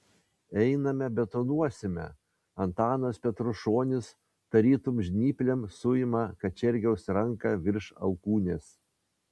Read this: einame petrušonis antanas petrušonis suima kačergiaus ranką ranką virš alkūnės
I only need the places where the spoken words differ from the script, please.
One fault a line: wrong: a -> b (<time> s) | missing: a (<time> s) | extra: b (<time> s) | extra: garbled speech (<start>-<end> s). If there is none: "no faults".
wrong: petrušonis -> betonuosime (1.2 s)
extra: tarytum žnyplėm (4.6 s)
missing: ranką (7.6 s)